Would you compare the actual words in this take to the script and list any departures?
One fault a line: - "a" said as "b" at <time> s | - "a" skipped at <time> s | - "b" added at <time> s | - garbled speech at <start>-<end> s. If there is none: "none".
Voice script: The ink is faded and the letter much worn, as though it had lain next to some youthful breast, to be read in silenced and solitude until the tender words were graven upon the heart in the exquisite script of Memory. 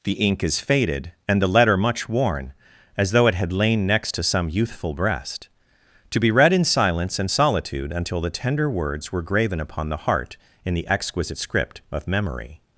- "silenced" said as "silence" at 6.6 s